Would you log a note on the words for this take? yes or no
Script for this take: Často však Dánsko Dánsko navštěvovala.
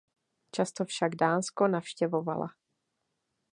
yes